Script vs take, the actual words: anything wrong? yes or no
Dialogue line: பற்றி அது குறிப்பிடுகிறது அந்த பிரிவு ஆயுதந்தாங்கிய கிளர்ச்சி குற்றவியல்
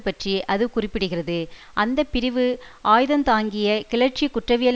no